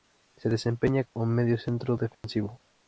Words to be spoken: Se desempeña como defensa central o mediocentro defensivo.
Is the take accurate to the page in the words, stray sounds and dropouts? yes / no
no